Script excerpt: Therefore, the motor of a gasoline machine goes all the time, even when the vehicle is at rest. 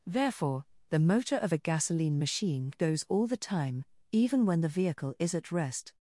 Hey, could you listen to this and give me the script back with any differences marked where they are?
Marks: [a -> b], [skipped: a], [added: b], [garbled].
Therefore, the motor of a gasoline machine goes all the time, even when the vehicle is at rest.